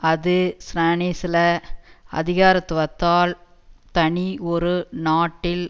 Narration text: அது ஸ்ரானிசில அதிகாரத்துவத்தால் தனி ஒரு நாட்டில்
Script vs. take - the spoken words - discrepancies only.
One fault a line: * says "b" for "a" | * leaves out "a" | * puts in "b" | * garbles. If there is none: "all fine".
all fine